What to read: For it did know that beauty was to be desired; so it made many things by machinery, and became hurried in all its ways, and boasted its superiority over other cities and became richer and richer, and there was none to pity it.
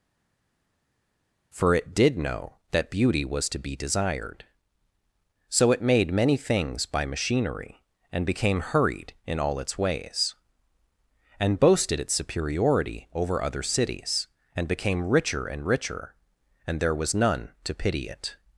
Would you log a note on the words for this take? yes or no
no